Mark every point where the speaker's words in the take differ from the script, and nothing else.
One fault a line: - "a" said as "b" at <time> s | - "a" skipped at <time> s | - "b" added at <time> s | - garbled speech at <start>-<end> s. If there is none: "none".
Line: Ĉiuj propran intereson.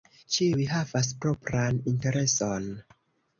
- "havas" added at 0.7 s